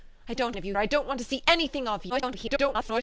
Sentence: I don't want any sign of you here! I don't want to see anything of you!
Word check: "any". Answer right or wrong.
wrong